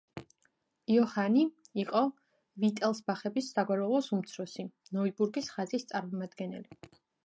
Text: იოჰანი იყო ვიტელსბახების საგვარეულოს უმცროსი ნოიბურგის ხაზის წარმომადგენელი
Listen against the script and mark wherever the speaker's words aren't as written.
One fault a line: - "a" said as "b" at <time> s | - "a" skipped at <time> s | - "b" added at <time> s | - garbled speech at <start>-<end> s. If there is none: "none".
none